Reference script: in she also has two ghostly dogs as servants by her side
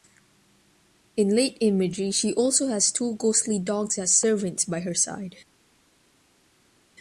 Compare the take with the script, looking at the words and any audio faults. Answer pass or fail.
fail